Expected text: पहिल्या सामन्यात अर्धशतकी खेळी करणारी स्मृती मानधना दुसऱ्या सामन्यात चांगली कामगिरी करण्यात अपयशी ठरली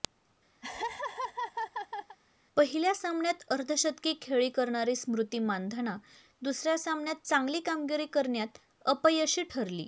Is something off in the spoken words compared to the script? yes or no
no